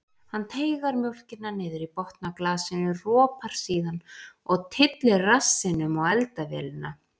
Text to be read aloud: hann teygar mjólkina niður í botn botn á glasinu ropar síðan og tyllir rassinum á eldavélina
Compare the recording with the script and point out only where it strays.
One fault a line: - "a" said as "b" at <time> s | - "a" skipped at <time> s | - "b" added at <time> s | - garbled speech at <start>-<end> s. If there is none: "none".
- "botn" skipped at 2.3 s